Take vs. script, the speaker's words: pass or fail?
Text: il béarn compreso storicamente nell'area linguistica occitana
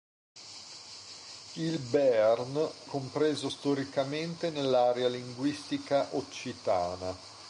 pass